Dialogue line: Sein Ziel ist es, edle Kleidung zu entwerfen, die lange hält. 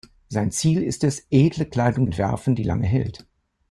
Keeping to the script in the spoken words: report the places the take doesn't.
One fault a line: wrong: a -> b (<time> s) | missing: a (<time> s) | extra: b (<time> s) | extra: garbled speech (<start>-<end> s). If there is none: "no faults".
missing: zu (2.1 s)